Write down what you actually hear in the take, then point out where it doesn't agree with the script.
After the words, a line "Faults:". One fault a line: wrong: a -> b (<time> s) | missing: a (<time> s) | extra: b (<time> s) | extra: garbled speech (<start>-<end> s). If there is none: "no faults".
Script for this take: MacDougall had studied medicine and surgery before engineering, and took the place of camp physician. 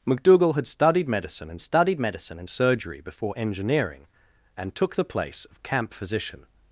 MacDougall had studied medicine and studied medicine and surgery before engineering, and took the place of camp physician.
Faults:
extra: studied medicine and (1.6 s)